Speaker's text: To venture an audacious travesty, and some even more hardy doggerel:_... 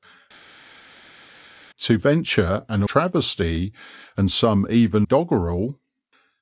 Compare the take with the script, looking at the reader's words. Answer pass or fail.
fail